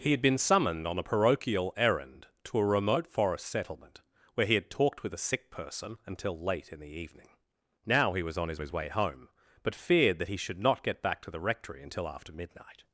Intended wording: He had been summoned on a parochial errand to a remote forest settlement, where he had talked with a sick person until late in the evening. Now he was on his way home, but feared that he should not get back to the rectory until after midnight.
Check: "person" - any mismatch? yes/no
no